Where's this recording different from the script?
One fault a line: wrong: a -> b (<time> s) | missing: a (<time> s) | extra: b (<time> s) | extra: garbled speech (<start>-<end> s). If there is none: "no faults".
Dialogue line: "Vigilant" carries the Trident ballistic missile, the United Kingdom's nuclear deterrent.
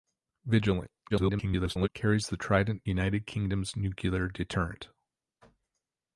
extra: garbled speech (1.1-1.9 s)
missing: ballistic missile the (2.8 s)